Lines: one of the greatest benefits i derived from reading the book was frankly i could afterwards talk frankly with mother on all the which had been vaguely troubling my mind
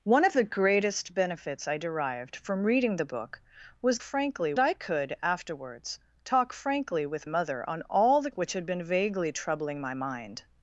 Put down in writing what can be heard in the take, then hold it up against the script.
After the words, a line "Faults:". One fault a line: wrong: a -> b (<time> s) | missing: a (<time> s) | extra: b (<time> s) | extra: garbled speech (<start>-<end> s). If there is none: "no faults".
one of the greatest benefits i derived from reading the book was frankly i could afterwards talk frankly with mother on all the which had been vaguely troubling my mind
Faults:
no faults